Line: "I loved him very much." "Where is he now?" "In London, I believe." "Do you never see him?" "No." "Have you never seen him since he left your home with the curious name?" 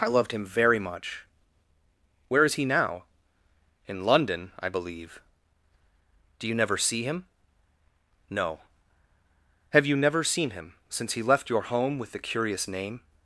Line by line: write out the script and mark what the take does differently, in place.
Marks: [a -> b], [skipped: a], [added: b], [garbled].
"I loved him very much." "Where is he now?" "In London, I believe." "Do you never see him?" "No." "Have you never seen him since he left your home with the curious name?"